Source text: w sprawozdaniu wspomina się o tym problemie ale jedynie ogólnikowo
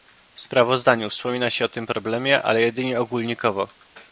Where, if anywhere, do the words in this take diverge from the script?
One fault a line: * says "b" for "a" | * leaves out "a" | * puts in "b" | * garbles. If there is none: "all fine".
all fine